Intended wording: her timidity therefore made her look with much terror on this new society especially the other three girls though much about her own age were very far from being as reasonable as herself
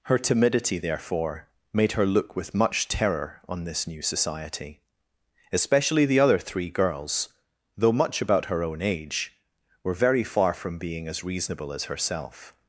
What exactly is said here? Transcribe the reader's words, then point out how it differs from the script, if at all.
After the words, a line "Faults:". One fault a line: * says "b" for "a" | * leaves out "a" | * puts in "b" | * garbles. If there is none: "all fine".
her timidity therefore made her look with much terror on this new society especially the other three girls though much about her own age were very far from being as reasonable as herself
Faults:
all fine